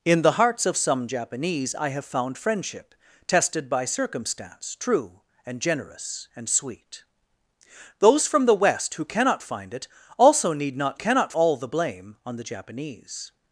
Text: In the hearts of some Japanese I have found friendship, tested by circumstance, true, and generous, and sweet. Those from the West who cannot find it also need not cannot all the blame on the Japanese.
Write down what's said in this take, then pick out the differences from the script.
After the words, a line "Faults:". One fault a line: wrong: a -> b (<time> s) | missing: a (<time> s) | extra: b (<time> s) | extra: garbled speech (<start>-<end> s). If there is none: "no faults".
In the hearts of some Japanese I have found friendship, tested by circumstance, true, and generous, and sweet. Those from the West who cannot find it also need not cannot all the blame on the Japanese.
Faults:
no faults